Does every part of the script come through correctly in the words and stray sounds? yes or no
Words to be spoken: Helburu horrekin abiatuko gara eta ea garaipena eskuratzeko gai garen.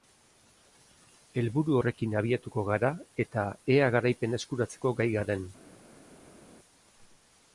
yes